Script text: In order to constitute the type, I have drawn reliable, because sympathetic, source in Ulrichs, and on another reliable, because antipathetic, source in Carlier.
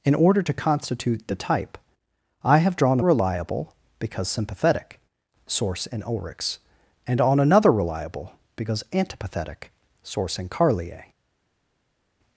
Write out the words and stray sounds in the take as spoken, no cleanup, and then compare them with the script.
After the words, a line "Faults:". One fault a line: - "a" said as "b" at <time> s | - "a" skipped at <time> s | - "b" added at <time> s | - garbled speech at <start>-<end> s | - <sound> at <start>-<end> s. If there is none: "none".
In order to constitute the type, I have drawn reliable, because sympathetic, source in Ulrichs, and on another reliable, because antipathetic, source in Carlier.
Faults:
none